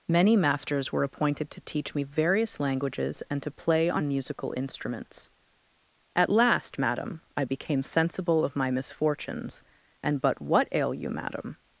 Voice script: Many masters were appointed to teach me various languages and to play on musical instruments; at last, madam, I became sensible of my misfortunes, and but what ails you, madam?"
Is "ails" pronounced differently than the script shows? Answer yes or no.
yes